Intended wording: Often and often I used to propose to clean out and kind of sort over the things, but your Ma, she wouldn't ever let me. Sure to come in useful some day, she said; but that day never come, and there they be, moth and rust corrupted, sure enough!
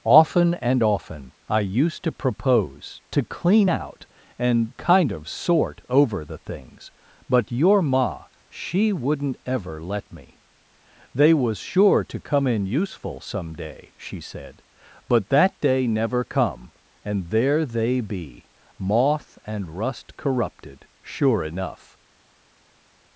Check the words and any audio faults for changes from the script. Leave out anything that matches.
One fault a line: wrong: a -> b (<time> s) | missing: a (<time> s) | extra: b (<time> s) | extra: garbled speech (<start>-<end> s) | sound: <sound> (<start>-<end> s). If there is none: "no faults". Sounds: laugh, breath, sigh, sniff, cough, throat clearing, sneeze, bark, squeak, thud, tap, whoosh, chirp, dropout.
extra: They was (11.2 s)